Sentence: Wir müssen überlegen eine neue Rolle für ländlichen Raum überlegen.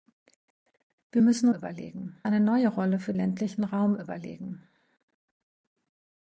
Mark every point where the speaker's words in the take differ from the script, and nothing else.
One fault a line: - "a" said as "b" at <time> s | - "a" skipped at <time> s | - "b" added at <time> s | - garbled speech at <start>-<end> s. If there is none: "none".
none